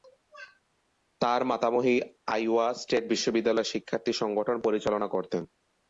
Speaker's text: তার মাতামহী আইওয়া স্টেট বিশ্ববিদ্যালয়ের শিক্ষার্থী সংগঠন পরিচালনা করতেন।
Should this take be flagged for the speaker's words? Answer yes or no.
no